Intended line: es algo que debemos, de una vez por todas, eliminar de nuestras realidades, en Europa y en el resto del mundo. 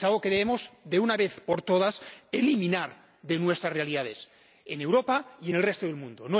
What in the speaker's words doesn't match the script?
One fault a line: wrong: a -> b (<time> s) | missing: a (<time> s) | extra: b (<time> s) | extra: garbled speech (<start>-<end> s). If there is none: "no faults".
no faults